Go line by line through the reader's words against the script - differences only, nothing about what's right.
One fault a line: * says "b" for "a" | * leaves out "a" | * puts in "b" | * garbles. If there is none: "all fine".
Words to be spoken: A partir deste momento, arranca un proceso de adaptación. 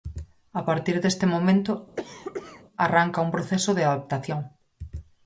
all fine